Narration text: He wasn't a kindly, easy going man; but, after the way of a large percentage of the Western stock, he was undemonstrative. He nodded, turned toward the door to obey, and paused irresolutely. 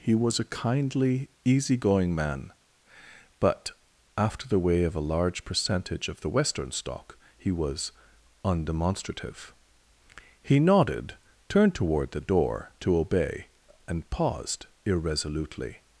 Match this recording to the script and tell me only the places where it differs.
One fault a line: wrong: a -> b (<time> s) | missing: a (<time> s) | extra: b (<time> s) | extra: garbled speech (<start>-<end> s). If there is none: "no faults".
wrong: wasn't -> was (0.1 s)